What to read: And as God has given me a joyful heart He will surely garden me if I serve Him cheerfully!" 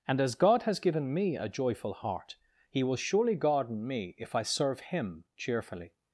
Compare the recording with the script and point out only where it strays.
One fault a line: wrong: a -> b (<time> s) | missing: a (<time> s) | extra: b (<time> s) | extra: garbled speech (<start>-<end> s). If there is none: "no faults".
no faults